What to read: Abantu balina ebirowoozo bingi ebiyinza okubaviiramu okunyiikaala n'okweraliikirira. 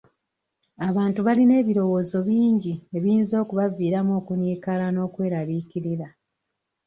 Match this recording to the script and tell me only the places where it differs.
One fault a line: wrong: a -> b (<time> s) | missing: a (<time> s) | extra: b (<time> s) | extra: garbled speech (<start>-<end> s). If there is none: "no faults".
no faults